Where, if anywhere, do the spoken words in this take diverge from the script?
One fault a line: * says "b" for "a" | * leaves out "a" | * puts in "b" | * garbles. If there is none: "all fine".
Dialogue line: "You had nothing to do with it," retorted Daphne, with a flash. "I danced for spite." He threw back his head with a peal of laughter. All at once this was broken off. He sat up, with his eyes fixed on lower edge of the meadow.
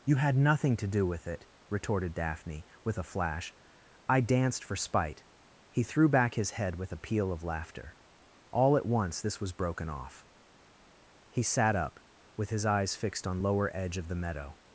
all fine